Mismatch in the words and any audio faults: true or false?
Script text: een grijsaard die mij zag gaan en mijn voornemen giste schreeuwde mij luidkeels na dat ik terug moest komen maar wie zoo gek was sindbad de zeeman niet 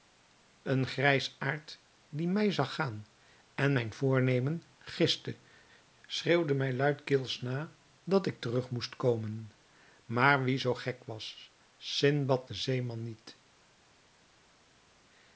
false